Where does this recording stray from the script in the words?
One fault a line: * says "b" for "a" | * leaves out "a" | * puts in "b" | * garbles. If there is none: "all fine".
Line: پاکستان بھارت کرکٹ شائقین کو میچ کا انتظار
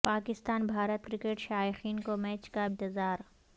all fine